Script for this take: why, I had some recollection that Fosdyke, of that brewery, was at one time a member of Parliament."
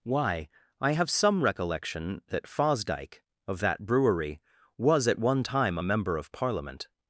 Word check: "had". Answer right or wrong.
wrong